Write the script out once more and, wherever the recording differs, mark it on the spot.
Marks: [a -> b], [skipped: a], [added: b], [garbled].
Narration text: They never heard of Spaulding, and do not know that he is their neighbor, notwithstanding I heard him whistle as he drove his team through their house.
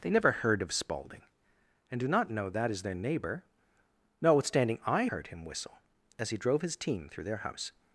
They never heard of Spaulding, and do not know that [skipped: he] is their neighbor, notwithstanding I heard him whistle as he drove his team through their house.